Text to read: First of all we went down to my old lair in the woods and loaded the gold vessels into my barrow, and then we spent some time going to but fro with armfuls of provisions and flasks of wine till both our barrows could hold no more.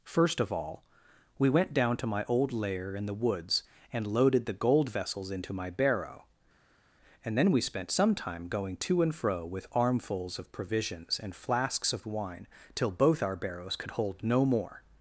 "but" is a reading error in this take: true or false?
true